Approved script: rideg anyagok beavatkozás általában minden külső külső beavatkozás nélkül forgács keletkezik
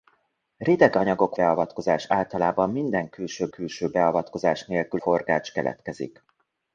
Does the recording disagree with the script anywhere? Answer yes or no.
no